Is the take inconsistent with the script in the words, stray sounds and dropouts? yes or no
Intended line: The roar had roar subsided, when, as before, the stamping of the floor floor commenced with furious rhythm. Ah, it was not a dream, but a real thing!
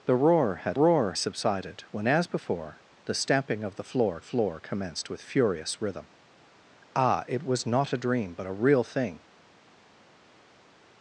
no